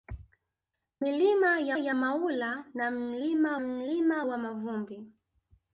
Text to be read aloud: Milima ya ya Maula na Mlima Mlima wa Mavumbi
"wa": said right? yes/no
yes